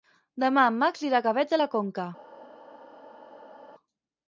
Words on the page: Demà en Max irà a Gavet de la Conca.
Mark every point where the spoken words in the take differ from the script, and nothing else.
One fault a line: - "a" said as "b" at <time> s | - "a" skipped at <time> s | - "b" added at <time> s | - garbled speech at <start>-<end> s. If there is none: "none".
none